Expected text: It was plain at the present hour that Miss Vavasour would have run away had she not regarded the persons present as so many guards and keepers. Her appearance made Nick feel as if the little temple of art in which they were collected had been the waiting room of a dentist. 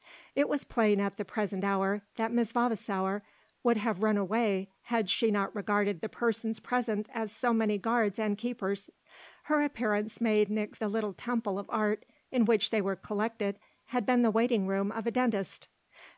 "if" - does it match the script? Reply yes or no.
no